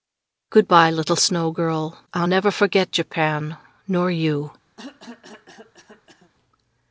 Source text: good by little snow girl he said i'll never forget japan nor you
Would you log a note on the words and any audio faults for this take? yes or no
yes